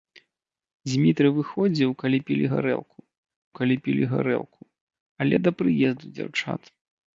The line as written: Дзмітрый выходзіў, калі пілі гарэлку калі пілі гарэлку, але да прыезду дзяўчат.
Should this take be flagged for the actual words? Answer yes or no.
no